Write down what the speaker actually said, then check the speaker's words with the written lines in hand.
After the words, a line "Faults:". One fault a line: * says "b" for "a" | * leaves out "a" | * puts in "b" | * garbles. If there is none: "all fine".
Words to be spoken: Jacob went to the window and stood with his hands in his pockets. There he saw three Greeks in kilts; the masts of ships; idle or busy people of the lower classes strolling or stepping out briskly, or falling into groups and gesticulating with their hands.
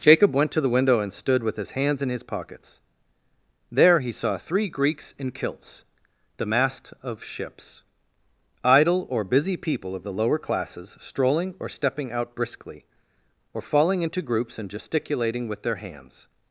Jacob went to the window and stood with his hands in his pockets. There he saw three Greeks in kilts; the mast of ships; idle or busy people of the lower classes strolling or stepping out briskly, or falling into groups and gesticulating with their hands.
Faults:
* says "mast" for "masts"